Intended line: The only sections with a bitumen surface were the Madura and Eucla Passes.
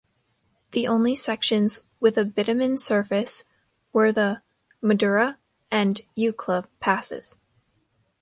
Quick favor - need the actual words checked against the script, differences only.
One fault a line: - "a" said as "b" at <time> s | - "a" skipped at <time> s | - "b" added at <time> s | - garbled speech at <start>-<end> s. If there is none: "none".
none